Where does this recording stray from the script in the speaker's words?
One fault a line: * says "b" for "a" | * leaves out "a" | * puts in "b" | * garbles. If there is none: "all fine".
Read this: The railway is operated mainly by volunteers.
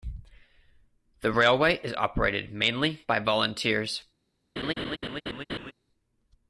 all fine